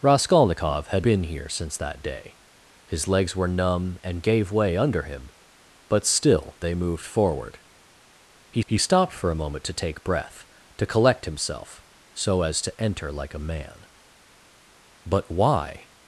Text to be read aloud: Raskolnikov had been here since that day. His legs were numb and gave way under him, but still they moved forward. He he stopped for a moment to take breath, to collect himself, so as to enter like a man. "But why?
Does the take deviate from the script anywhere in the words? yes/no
no